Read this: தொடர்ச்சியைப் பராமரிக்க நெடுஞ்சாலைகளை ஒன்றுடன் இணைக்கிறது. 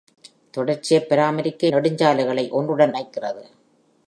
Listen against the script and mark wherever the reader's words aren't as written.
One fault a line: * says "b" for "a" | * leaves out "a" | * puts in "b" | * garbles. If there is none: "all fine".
all fine